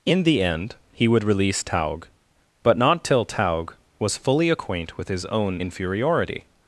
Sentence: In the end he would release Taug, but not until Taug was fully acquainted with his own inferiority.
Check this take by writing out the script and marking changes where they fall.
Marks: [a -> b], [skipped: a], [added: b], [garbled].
In the end he would release Taug, but not [until -> till] Taug was fully [acquainted -> acquaint] with his own inferiority.